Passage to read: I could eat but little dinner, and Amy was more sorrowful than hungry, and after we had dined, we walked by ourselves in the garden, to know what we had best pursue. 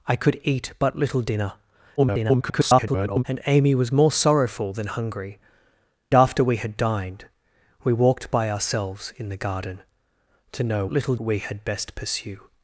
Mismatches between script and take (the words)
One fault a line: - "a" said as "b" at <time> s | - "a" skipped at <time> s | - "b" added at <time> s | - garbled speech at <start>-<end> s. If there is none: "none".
- garbled speech at 2.0-3.2 s
- "and" skipped at 5.4 s
- "what" said as "little" at 10.9 s